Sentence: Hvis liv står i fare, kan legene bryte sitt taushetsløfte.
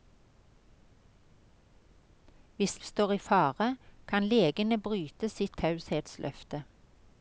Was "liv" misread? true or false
true